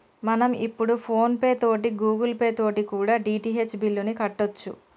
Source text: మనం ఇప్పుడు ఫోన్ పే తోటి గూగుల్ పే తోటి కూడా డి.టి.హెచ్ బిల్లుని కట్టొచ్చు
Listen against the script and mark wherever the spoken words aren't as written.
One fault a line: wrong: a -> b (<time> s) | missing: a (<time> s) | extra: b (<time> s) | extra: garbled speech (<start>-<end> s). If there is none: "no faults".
no faults